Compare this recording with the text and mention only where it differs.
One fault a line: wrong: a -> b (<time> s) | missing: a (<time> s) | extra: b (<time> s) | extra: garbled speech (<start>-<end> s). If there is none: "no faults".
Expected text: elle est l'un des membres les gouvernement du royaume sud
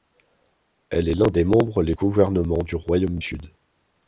no faults